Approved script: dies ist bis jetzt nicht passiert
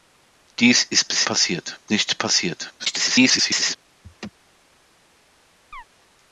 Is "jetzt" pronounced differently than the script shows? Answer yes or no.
yes